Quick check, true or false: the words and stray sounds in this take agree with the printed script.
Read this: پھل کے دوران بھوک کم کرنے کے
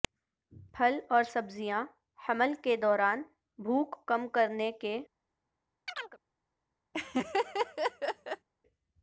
false